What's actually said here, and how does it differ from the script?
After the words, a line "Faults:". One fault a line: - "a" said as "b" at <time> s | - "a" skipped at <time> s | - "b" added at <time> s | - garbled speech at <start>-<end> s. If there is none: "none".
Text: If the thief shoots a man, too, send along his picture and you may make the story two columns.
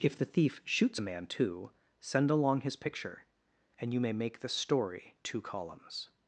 If the thief shoots a man, too, send along his picture and you may make the story two columns.
Faults:
none